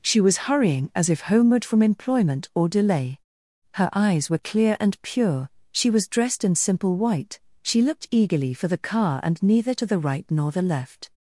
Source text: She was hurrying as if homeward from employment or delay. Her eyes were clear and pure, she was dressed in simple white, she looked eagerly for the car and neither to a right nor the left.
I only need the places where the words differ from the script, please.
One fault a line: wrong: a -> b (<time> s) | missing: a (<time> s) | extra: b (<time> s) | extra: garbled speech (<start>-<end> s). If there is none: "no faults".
wrong: a -> the (9.8 s)